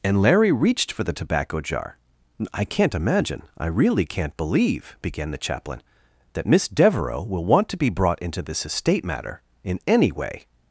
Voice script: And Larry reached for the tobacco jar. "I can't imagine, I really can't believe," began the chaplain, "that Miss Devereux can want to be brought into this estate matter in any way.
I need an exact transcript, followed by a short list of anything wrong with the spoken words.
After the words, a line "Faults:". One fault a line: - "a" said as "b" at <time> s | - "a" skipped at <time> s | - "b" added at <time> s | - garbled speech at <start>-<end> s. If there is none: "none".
And Larry reached for the tobacco jar. "I can't imagine, I really can't believe," began the chaplain, "that Miss Devereux will want to be brought into this estate matter in any way.
Faults:
- "can" said as "will" at 7.2 s